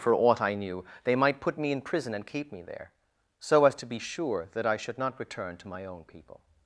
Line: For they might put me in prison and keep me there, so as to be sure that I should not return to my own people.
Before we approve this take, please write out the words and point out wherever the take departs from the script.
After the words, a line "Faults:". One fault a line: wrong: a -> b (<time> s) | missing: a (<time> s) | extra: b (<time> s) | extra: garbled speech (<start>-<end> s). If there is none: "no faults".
For aught I knew, they might put me in prison and keep me there, so as to be sure that I should not return to my own people.
Faults:
extra: aught I knew (0.1 s)